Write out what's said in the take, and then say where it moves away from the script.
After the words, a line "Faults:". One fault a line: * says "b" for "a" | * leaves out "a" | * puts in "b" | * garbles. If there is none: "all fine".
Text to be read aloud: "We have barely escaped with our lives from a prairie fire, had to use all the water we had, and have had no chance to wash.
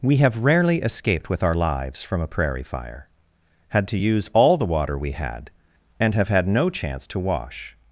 "We have rarely escaped with our lives from a prairie fire, had to use all the water we had, and have had no chance to wash.
Faults:
* says "rarely" for "barely"